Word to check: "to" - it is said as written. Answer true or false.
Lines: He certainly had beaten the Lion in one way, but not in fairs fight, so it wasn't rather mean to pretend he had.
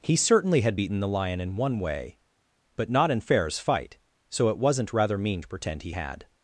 true